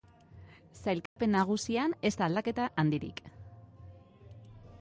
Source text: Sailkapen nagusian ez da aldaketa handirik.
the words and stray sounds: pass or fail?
fail